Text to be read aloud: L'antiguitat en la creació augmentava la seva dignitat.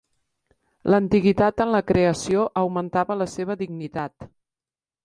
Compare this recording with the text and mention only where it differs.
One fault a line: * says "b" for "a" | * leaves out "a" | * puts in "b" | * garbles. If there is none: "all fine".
all fine